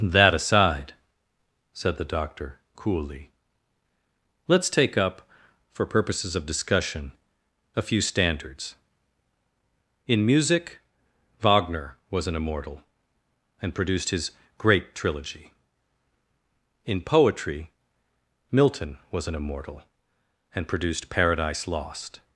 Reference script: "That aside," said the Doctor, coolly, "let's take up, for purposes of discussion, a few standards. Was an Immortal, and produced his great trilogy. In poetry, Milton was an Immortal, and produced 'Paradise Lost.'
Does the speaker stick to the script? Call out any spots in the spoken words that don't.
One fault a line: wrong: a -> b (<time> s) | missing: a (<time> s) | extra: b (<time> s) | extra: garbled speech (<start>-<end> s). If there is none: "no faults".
extra: In music Wagner (10.1 s)